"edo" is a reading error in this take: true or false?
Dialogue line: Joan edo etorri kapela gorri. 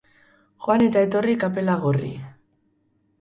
true